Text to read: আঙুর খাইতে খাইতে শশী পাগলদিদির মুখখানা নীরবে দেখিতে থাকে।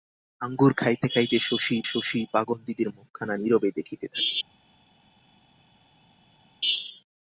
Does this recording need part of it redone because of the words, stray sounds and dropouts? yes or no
yes